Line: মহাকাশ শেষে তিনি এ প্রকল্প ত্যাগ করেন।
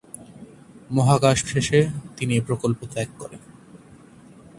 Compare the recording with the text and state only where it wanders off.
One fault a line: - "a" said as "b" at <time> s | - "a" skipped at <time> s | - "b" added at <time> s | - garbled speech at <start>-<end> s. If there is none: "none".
none